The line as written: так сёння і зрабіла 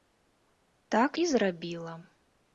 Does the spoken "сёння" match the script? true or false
false